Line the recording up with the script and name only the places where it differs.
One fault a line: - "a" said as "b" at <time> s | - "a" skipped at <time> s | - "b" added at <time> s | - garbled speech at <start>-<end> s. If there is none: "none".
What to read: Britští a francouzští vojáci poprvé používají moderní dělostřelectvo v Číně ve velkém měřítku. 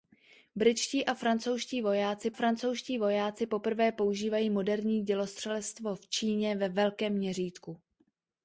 - "francouzští vojáci" added at 2.3 s